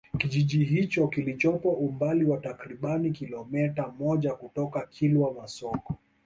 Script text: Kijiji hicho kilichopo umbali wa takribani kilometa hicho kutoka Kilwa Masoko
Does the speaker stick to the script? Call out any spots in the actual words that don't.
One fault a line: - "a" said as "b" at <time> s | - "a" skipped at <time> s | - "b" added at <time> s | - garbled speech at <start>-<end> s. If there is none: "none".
- "hicho" said as "moja" at 4.0 s